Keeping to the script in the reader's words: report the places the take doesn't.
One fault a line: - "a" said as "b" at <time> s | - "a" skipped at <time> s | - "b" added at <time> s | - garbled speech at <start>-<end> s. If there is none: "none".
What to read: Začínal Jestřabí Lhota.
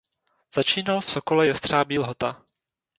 - "v Sokole" added at 1.0 s